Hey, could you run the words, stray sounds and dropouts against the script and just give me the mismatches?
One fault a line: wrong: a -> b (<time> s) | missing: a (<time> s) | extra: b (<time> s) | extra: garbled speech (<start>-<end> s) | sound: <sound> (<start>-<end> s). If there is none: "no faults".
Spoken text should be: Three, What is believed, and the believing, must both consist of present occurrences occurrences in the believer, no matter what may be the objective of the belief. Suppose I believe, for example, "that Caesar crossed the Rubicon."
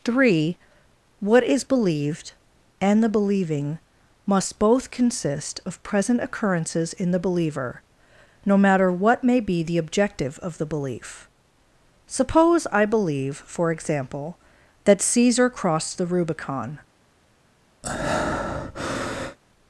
missing: occurrences (6.9 s)
sound: breath (17.8-19.4 s)